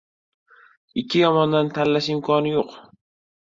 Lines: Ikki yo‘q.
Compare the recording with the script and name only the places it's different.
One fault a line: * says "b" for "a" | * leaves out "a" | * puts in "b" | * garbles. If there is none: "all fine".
* puts in "yomondan tanlash imkoni"